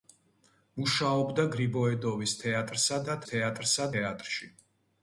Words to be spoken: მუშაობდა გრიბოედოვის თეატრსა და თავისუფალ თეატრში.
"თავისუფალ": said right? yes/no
no